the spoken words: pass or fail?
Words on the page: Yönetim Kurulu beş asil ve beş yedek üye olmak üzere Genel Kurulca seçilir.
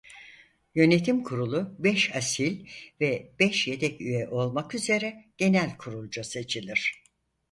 pass